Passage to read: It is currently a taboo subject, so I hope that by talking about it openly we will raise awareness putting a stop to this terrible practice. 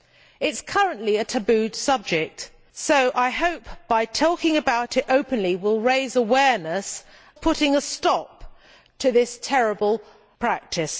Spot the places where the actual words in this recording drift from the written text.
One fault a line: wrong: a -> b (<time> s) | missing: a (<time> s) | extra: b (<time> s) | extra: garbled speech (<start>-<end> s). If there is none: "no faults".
no faults